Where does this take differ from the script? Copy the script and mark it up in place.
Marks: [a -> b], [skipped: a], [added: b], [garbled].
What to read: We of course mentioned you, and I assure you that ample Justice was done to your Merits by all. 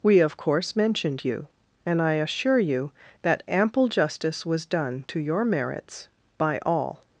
We of course mentioned you, and I assure you that ample Justice was done to your Merits by all.